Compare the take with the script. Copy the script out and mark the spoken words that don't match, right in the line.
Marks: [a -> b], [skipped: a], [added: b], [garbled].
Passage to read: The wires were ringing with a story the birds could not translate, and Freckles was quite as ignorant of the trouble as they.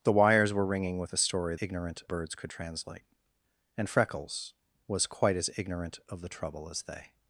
The wires were ringing with a story [the -> ignorant] birds could [skipped: not] translate, and Freckles was quite as ignorant of the trouble as they.